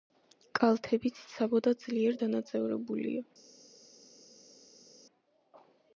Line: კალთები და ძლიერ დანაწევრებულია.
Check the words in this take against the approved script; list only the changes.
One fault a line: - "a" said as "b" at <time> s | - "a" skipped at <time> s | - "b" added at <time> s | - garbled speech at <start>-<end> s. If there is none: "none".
- "ციცაბო" added at 1.2 s